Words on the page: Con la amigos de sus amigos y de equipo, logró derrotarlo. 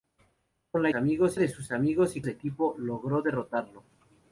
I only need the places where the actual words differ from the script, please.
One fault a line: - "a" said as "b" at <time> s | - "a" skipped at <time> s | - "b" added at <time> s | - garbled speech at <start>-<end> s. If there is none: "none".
none